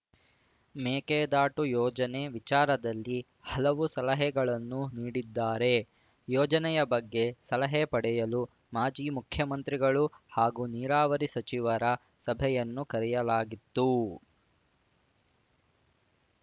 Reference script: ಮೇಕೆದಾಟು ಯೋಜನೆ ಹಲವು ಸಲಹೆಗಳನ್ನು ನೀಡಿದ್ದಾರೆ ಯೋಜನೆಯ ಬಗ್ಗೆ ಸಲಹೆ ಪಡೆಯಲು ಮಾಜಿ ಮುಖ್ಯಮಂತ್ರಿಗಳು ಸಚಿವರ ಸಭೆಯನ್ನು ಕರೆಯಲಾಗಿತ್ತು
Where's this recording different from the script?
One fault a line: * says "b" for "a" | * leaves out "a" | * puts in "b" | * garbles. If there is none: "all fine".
* puts in "ವಿಚಾರದಲ್ಲಿ"
* puts in "ಹಾಗೂ ನೀರಾವರಿ"